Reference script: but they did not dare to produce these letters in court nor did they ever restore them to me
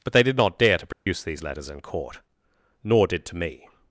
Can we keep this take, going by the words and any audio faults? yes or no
no